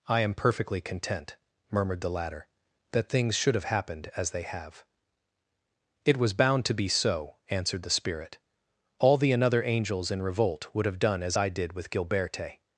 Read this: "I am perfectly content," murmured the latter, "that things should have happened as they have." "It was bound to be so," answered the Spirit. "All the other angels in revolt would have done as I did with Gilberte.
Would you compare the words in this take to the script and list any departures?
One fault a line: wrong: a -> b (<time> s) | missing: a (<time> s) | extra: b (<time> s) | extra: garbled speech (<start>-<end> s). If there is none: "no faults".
wrong: other -> another (9.3 s)